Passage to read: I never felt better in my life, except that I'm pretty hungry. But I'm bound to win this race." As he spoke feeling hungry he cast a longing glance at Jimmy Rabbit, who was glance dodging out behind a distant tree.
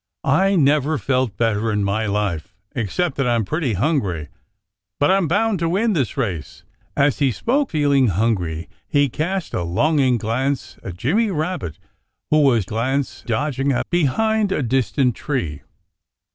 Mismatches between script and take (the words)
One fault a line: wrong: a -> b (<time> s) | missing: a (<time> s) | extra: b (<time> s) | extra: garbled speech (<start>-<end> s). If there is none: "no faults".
no faults